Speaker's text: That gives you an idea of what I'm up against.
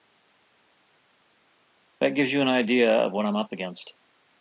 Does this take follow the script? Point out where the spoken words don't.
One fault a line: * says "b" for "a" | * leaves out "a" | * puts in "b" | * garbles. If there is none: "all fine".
all fine